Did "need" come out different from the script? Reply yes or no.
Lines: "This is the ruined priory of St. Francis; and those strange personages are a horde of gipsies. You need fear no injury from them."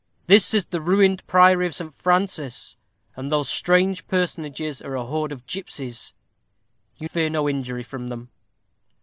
yes